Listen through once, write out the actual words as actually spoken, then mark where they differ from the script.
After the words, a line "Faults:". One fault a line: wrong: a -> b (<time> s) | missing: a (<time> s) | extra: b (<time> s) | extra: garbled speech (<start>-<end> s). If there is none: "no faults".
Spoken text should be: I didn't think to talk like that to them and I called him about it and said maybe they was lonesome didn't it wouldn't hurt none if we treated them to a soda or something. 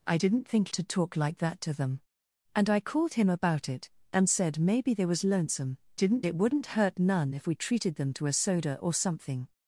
I didn't think to talk like that to them and I called him about it and said maybe they was lonesome didn't it wouldn't hurt none if we treated them to a soda or something.
Faults:
no faults